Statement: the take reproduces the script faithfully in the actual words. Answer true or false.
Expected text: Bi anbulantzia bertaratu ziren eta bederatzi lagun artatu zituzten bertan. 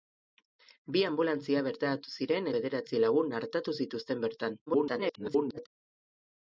false